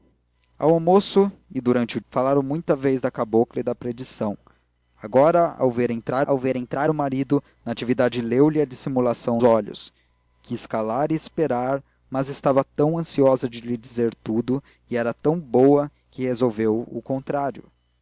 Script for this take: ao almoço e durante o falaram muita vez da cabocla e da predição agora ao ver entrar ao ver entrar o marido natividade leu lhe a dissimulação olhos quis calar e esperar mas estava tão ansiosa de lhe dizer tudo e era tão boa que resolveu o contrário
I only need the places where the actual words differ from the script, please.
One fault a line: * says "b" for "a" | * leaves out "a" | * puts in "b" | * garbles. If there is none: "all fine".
all fine